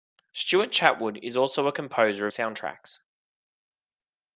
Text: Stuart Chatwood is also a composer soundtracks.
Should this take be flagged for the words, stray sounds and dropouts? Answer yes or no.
no